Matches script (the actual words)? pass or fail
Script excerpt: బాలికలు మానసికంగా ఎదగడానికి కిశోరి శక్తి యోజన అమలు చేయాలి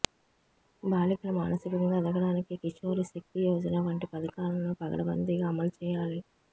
fail